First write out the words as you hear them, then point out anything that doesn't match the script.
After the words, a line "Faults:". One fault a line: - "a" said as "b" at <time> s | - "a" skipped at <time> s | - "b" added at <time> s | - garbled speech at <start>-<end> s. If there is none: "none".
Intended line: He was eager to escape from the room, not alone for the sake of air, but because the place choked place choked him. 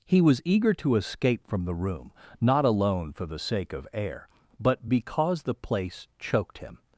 He was eager to escape from the room, not alone for the sake of air, but because the place choked him.
Faults:
- "place choked" skipped at 6.6 s